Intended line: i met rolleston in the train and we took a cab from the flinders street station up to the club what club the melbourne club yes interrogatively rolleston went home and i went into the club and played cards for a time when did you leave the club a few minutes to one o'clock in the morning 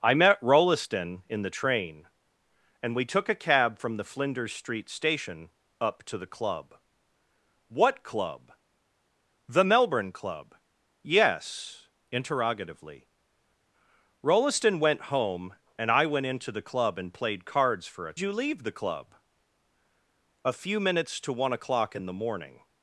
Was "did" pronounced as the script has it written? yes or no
no